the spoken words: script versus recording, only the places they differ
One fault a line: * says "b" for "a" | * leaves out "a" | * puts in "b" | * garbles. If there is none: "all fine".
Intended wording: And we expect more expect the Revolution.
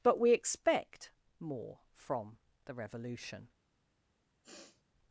* says "But" for "And"
* says "from" for "expect"